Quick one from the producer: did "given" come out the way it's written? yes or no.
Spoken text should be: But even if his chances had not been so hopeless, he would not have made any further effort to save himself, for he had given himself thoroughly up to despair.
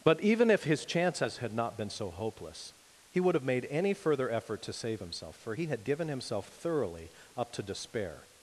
yes